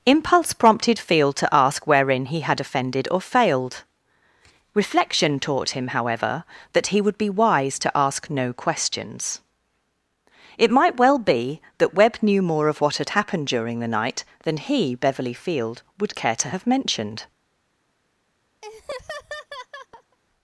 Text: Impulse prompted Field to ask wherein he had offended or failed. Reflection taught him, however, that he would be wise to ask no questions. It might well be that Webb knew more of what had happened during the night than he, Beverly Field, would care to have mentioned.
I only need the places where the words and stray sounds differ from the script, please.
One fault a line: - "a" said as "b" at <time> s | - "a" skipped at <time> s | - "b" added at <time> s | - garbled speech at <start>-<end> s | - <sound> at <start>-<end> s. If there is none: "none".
- laugh at 18.6-20.2 s